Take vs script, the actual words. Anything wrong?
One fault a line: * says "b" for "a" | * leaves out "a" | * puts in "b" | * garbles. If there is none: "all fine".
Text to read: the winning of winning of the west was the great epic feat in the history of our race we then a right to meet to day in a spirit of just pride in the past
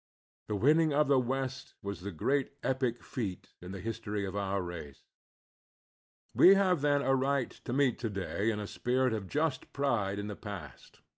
* leaves out "winning of"
* puts in "have"